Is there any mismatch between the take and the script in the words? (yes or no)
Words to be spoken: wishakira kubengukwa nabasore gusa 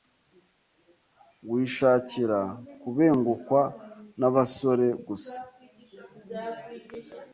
no